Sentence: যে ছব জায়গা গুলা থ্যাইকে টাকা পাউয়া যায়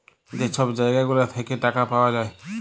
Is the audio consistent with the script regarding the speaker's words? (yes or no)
yes